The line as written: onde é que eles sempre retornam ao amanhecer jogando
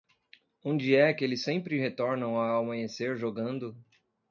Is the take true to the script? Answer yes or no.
yes